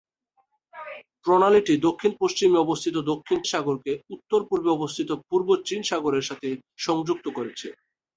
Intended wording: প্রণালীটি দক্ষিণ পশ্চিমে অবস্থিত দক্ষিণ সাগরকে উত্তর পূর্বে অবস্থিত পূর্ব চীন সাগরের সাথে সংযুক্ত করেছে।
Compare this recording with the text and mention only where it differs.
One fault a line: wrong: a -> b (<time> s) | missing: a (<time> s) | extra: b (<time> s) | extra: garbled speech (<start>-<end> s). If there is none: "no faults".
no faults